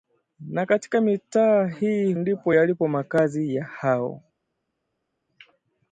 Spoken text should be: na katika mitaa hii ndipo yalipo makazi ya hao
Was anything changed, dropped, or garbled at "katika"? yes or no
no